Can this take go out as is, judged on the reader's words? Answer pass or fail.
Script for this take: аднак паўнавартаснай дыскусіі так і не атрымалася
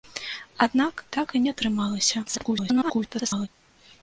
fail